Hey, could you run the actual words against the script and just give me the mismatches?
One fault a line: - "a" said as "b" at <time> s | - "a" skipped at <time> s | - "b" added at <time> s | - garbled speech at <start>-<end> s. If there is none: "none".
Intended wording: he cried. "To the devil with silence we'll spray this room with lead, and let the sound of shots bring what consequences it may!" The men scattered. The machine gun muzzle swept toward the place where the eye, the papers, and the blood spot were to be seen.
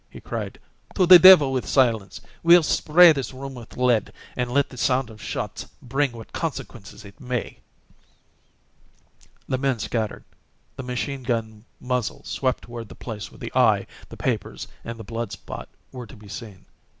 none